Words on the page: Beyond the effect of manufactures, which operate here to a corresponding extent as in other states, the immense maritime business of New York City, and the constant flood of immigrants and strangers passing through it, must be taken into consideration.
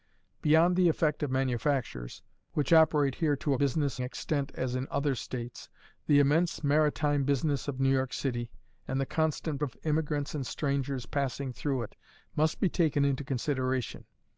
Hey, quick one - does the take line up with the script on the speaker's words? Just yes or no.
no